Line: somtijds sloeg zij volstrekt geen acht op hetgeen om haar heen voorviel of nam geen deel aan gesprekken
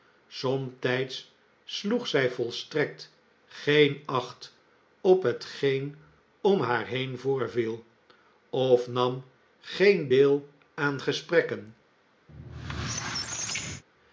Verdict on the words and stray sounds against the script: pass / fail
fail